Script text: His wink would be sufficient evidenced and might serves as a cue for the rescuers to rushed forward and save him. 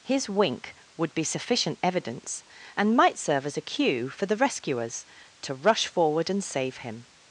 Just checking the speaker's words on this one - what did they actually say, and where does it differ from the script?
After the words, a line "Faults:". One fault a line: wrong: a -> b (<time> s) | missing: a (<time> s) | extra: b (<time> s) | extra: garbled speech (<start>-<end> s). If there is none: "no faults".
His wink would be sufficient evidence and might serve as a cue for the rescuers to rush forward and save him.
Faults:
wrong: evidenced -> evidence (1.8 s)
wrong: serves -> serve (3.2 s)
wrong: rushed -> rush (5.5 s)